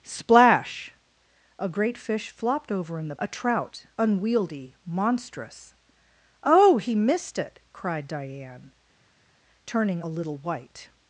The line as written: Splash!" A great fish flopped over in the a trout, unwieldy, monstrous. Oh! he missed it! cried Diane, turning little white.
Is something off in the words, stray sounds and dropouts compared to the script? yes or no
no